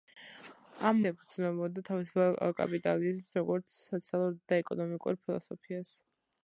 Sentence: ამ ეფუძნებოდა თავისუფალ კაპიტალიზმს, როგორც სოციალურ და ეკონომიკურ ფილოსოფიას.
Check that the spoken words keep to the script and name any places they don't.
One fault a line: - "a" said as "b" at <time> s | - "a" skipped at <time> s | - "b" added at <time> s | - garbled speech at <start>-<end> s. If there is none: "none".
none